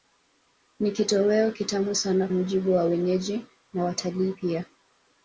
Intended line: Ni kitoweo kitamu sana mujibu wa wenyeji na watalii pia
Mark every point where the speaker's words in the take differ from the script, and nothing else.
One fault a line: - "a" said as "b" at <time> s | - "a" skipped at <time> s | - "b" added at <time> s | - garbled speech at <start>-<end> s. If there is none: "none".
none